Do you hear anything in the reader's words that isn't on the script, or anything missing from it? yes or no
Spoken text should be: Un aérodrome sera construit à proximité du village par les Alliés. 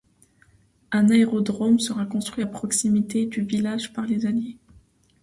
no